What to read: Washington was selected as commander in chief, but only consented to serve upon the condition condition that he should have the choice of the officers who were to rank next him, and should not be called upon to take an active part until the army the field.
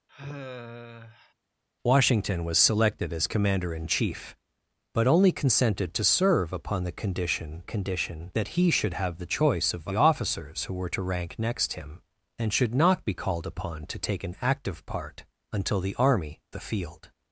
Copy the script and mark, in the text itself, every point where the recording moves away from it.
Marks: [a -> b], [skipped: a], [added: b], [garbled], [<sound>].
[sigh] Washington was selected as commander in chief, but only consented to serve upon the condition condition that he should have the choice of the officers who were to rank next him, and should not be called upon to take an active part until the army the field.